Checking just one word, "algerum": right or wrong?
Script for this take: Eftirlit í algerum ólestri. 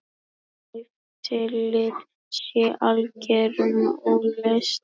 right